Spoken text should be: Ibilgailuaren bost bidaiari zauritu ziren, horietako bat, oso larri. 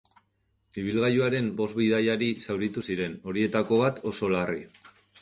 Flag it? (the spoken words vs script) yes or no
no